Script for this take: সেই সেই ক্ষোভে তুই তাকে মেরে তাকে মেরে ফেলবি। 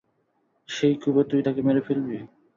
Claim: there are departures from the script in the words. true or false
true